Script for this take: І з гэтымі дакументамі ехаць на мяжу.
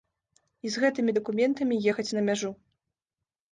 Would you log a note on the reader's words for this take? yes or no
no